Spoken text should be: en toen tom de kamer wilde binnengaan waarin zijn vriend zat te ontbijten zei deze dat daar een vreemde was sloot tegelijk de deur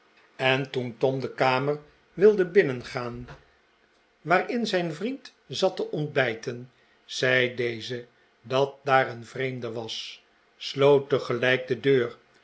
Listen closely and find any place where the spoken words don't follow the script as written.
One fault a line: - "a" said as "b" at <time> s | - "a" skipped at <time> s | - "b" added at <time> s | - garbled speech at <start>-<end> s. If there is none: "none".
none